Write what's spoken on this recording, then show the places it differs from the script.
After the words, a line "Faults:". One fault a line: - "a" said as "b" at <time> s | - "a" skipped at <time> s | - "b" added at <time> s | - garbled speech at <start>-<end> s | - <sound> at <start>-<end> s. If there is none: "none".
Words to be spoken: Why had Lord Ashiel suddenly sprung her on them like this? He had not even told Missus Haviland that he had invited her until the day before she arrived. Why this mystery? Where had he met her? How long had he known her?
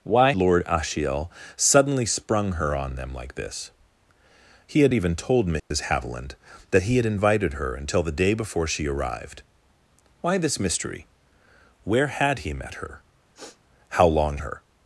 Why Lord Ashiel suddenly sprung her on them like this? He had even told Missus Haviland that he had invited her until the day before she arrived. Why this mystery? Where had he met her? How long her?
Faults:
- "had" skipped at 0.3 s
- "not" skipped at 4.9 s
- dropout at 5.6-5.7 s
- sniff at 13.3-13.6 s
- "had he known" skipped at 14.4 s